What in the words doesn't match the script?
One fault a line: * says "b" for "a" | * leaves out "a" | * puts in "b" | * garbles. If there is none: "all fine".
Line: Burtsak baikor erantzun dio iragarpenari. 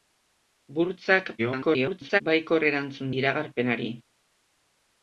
* garbles
* leaves out "dio"